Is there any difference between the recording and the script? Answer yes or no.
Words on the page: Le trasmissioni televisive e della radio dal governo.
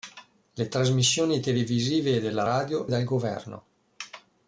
no